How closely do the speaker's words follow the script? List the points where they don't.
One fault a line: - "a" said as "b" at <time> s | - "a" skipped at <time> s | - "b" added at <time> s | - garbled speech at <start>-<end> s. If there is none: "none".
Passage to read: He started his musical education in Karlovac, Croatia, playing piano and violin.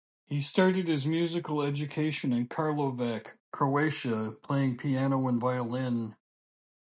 none